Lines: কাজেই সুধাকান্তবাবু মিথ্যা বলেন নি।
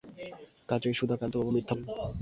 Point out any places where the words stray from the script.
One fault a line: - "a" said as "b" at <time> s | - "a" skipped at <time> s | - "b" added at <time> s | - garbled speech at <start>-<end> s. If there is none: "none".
- "বলেন" skipped at 1.7 s